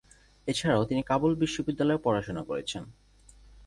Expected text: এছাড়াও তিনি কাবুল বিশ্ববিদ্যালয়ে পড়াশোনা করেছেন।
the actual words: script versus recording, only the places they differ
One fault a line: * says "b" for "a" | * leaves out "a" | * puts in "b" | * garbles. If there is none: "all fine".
all fine